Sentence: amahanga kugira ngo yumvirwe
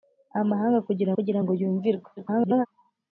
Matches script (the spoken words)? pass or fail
fail